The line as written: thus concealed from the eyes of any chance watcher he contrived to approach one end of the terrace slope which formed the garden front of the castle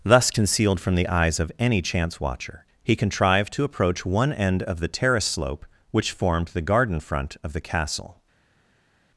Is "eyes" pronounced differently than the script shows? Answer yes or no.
no